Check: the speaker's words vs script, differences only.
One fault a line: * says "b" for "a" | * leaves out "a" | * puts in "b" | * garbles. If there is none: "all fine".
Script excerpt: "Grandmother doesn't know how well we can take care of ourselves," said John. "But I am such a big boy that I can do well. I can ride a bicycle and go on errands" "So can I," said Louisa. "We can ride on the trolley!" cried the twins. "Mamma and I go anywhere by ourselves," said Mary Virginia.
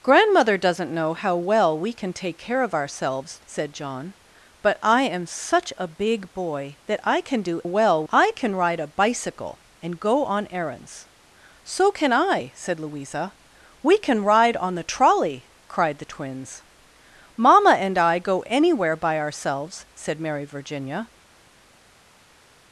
all fine